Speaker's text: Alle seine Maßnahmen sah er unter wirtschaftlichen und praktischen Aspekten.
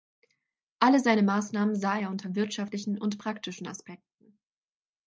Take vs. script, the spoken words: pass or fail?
pass